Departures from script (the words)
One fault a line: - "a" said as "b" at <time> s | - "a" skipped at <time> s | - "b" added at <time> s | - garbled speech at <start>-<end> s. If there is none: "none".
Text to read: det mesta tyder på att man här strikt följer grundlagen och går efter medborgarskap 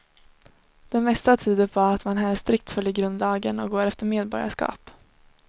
none